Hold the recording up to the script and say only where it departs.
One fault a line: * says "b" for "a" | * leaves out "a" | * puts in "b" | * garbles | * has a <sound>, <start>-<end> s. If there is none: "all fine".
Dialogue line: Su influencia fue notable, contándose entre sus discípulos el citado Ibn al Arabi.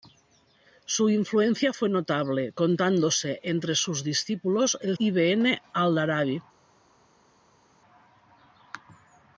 * leaves out "citado"